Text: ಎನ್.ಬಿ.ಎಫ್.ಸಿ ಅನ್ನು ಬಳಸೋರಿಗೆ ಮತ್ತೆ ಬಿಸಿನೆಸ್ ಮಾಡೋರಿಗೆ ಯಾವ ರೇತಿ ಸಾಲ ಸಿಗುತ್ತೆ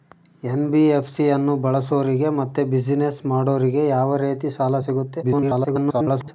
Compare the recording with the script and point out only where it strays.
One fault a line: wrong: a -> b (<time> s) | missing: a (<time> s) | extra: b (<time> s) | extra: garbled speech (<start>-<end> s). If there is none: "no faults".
extra: garbled speech (5.2-6.3 s)